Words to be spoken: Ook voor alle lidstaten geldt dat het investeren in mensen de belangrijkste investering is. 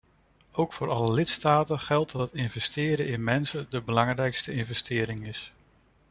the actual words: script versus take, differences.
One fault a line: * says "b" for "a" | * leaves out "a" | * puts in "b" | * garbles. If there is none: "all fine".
all fine